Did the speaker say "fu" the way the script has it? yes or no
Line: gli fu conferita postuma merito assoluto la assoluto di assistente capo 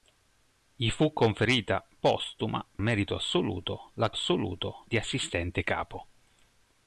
yes